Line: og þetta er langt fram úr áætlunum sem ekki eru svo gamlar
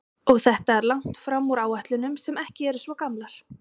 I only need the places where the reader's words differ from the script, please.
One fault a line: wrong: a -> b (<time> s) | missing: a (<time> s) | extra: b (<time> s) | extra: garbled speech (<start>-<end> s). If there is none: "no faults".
no faults